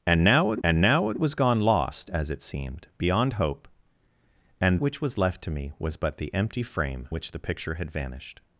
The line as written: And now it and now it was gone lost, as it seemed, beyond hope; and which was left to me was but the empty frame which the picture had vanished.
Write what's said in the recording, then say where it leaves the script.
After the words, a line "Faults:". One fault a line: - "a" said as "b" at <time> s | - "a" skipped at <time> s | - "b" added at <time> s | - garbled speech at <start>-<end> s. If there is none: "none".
And now it and now it was gone lost, as it seemed, beyond hope; and which was left to me was but the empty frame which the picture had vanished.
Faults:
none